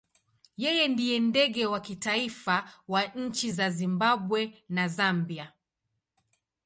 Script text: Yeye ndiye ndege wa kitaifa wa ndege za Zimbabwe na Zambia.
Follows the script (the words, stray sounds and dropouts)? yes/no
no